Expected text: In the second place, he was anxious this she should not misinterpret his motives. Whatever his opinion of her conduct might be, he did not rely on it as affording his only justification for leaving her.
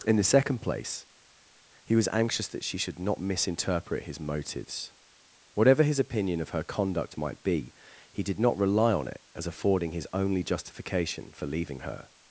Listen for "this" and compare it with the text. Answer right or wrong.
wrong